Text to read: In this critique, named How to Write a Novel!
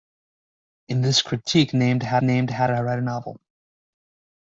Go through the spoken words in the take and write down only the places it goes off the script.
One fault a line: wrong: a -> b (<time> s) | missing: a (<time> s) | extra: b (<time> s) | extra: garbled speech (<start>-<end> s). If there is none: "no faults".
extra: named How (2.2 s)